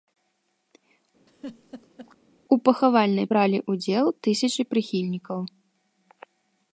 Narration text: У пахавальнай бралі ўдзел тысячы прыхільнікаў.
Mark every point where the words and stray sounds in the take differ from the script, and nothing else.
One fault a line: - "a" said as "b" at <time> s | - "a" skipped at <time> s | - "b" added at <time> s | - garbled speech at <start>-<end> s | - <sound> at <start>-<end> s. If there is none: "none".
- laugh at 1.3-2.2 s